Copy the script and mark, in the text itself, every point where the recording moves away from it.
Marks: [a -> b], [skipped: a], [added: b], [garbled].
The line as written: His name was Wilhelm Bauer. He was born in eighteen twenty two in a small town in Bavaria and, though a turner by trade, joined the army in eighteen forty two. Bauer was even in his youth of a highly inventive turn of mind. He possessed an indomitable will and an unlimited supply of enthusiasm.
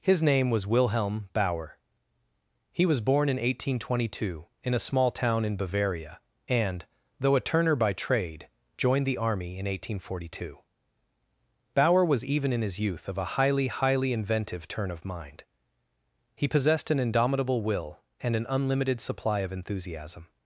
His name was Wilhelm Bauer. He was born in eighteen twenty two in a small town in Bavaria and, though a turner by trade, joined the army in eighteen forty two. Bauer was even in his youth of a highly [added: highly] inventive turn of mind. He possessed an indomitable will and an unlimited supply of enthusiasm.